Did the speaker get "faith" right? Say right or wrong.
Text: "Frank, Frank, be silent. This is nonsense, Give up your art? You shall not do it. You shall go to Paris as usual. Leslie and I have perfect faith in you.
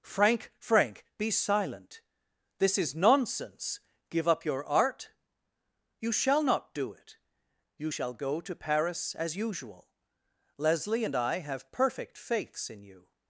wrong